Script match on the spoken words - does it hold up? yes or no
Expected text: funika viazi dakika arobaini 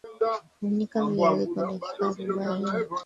no